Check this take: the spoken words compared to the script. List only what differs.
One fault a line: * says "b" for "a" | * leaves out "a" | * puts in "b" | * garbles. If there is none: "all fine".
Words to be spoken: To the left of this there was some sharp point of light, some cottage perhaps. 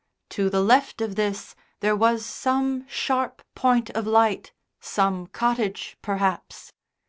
all fine